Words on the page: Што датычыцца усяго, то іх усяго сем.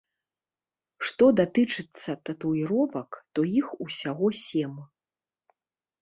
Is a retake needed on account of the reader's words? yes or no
yes